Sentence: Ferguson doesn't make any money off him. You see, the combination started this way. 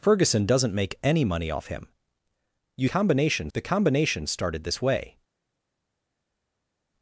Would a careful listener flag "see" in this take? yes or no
yes